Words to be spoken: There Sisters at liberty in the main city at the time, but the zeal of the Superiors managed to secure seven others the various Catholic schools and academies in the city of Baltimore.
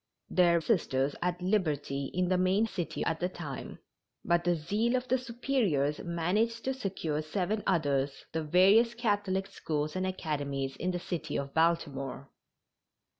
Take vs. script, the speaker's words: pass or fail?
pass